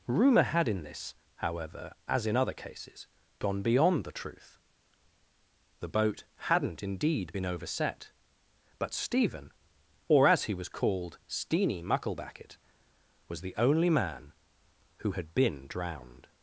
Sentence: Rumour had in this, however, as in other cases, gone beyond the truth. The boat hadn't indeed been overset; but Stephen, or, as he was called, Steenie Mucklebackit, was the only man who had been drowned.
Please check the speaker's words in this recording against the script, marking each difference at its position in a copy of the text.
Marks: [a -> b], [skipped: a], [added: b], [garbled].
Rumour had in this, however, as in other cases, gone beyond the truth. The boat hadn't indeed been overset; but Stephen, or, as he was called, Steenie Mucklebackit, was the only man who had been drowned.